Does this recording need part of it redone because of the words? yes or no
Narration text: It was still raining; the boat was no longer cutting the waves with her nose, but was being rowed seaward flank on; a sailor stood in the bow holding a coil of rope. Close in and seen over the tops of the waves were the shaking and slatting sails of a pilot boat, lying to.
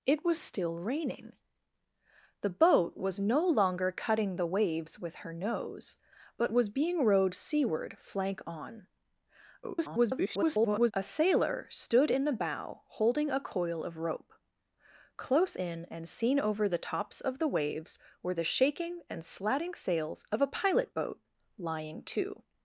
yes